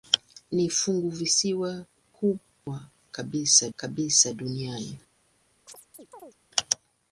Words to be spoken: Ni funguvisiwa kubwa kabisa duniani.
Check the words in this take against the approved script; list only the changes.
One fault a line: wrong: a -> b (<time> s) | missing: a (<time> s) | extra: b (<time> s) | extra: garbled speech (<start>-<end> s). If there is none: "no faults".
extra: kabisa (3.8 s)